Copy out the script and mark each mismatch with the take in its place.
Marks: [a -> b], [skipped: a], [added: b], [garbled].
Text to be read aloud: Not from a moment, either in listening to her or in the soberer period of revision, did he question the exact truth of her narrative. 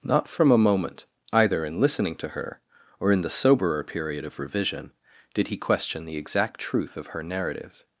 Not from a moment, either in listening to her or in the soberer period of revision, did he question the exact truth of her narrative.